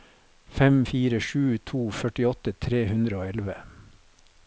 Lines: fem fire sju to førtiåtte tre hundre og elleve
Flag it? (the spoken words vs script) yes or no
no